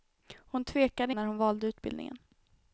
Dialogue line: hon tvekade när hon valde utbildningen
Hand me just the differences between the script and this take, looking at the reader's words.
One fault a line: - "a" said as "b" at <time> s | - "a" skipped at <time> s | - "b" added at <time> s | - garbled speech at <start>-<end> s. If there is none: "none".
none